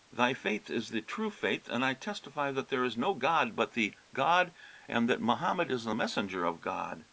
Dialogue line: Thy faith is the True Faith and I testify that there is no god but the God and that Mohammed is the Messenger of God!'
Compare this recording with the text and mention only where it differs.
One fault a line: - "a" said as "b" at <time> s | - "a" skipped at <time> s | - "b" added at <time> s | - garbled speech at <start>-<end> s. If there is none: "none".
none